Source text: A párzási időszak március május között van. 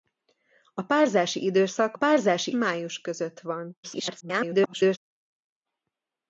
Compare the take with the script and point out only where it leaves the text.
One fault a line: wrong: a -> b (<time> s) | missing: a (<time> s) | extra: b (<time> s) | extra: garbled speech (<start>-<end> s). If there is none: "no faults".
wrong: március -> párzási (1.9 s)
extra: garbled speech (3.8-5.0 s)